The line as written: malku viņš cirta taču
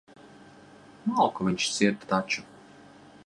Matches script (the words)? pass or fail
pass